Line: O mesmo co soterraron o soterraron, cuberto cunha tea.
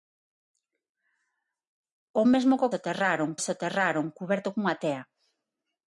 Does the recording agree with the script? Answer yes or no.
yes